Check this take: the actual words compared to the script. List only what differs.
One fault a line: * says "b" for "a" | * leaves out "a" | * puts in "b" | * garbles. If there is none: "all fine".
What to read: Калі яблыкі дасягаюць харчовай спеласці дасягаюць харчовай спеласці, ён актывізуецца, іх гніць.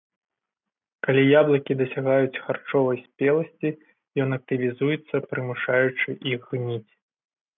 * leaves out "дасягаюць харчовай спеласці"
* puts in "прымушаючы"